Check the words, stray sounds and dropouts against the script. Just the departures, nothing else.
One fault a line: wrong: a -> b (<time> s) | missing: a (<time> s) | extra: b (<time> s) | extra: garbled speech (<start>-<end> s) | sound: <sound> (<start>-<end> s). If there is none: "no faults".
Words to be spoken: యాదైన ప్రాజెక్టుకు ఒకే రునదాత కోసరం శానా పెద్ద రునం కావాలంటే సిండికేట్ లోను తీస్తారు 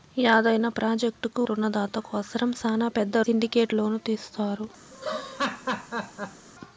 missing: ఒకే (1.4 s)
missing: రునం కావాలంటే (3.2 s)
sound: laugh (4.9-6.5 s)